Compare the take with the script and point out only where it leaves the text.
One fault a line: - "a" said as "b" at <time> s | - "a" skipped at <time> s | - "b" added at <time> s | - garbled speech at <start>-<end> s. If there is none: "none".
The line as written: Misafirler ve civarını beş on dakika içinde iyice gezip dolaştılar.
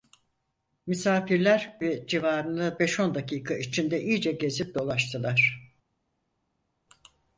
none